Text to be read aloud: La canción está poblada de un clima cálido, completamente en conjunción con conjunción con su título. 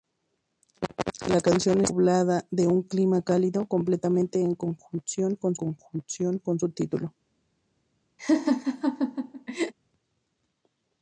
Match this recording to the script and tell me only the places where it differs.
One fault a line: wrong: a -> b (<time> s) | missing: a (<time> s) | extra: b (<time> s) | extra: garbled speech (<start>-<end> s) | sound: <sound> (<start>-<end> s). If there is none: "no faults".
sound: laugh (8.2-9.7 s)